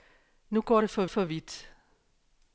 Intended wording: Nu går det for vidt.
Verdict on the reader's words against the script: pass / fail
fail